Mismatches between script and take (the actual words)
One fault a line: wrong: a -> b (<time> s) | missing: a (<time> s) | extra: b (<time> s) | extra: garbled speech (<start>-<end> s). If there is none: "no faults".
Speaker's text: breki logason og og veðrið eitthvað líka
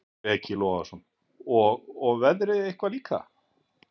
no faults